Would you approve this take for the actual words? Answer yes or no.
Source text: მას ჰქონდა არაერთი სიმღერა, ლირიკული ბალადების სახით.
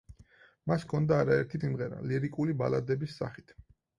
yes